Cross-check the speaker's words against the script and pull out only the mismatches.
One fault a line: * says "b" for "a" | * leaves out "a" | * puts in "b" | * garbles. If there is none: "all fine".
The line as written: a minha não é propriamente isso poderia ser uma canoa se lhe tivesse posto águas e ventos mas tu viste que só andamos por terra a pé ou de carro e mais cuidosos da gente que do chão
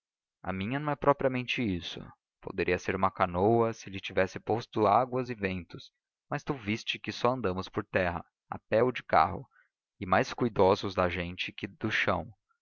all fine